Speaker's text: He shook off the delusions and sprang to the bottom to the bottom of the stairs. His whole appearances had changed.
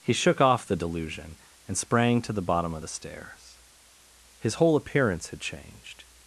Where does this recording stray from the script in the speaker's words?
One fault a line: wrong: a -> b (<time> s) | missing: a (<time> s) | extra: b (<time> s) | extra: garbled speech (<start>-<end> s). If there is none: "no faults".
wrong: delusions -> delusion (0.7 s)
missing: to the bottom (2.7 s)
wrong: appearances -> appearance (4.8 s)